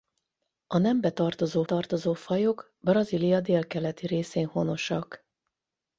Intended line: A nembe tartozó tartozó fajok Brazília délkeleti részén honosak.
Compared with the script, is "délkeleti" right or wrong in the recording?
right